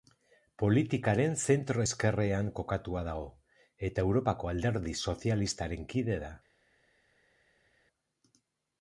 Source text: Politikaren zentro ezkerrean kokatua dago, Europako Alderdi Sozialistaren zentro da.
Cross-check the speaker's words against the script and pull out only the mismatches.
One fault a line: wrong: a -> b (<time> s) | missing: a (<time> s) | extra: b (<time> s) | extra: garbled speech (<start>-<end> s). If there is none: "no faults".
extra: eta (3.9 s)
wrong: zentro -> kide (6.0 s)